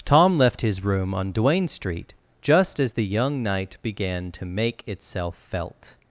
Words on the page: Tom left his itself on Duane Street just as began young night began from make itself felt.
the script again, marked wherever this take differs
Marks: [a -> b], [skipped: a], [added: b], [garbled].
Tom left his [itself -> room] on Duane Street just as [began -> the] young night began [from -> to] make itself felt.